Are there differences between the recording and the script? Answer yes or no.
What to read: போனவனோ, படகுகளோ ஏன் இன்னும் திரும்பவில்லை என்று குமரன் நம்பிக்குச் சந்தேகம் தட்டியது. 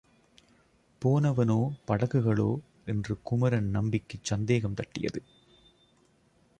yes